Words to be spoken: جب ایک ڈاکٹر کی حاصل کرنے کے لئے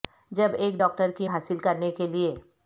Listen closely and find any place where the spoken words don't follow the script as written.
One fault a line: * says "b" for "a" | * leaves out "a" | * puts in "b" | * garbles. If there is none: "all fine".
all fine